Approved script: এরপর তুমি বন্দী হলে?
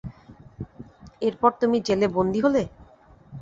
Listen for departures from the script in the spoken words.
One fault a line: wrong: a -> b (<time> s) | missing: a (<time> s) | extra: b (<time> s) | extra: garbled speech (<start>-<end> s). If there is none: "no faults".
extra: জেলে (1.9 s)